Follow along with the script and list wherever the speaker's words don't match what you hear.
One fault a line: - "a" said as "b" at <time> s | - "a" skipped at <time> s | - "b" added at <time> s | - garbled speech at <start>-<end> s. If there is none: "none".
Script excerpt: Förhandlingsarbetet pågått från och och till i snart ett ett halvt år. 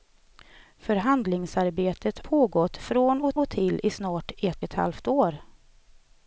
none